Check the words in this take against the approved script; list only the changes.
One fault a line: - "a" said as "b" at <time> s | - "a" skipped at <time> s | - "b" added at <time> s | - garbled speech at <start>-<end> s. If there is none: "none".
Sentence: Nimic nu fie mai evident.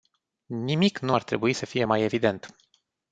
- "ar trebui să" added at 1.1 s